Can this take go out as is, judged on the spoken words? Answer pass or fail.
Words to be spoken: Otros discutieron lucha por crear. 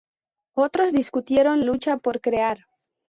pass